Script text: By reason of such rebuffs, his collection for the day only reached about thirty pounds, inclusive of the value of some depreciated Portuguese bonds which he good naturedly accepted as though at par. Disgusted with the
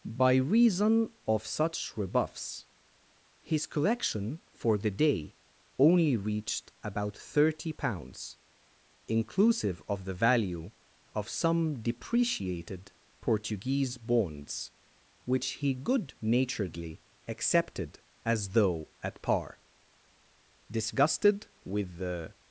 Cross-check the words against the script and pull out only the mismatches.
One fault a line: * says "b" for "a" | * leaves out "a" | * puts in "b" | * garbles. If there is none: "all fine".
all fine